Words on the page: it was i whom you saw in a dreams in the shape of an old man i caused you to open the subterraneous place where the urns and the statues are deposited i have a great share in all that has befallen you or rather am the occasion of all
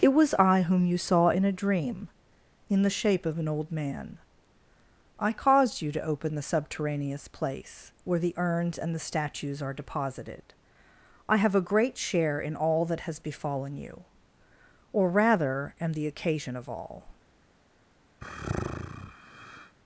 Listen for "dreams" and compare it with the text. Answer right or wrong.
wrong